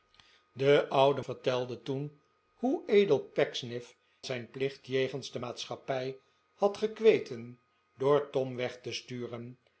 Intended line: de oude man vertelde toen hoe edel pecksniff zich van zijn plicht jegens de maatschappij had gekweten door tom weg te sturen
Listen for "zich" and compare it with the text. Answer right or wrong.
wrong